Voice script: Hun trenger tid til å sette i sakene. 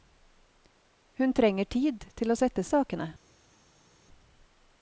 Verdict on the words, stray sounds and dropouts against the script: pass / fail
pass